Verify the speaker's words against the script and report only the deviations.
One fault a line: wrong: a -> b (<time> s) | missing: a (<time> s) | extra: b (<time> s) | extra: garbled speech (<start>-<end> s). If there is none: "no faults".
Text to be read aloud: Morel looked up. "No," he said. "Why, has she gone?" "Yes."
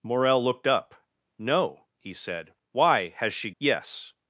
missing: gone (3.5 s)